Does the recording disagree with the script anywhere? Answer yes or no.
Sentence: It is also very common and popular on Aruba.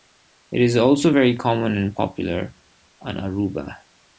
no